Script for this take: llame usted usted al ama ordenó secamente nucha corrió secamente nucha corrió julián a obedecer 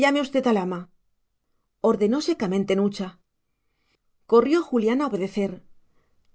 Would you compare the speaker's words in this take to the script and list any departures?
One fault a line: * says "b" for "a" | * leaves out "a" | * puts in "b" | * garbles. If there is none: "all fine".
* leaves out "usted"
* leaves out "secamente nucha corrió"